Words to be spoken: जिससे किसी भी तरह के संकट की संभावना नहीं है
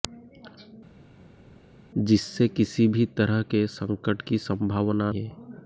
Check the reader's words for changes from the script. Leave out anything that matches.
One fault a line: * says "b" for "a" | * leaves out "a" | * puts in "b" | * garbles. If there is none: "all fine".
* leaves out "नहीं"